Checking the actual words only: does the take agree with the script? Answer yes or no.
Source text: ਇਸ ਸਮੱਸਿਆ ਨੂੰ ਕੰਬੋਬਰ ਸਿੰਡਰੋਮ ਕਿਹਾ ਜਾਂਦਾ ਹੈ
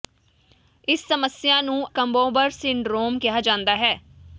yes